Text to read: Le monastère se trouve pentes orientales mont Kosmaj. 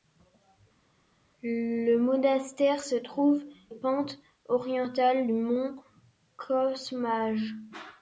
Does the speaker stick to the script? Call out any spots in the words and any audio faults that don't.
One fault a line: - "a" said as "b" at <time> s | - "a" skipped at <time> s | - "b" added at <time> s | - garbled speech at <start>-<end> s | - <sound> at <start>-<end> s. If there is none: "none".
none